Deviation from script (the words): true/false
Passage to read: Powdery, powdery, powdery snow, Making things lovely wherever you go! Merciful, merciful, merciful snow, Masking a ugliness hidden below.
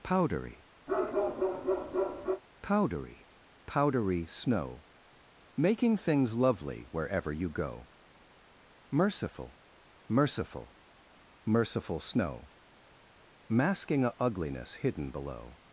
false